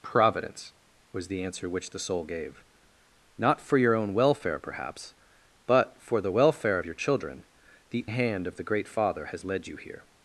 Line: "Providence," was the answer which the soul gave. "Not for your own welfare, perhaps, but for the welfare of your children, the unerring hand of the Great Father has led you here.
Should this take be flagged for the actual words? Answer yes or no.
yes